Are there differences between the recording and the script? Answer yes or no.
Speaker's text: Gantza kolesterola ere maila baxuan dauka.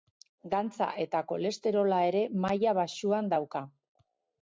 yes